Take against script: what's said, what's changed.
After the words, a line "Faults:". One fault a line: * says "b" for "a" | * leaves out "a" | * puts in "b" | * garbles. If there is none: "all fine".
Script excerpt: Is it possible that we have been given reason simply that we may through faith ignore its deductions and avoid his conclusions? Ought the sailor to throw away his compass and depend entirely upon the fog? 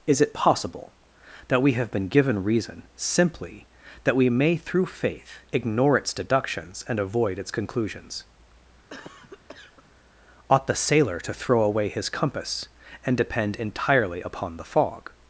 Is it possible that we have been given reason simply that we may through faith ignore its deductions and avoid its conclusions? Ought the sailor to throw away his compass and depend entirely upon the fog?
Faults:
* says "its" for "his"